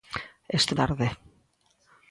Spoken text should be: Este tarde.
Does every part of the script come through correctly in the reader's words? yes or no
yes